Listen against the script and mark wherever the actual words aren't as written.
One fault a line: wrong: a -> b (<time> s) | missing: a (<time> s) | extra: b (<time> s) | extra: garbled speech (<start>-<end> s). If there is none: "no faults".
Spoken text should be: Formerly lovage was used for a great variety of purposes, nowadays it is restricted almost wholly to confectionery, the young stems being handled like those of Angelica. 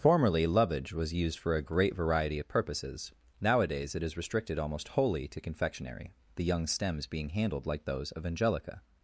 no faults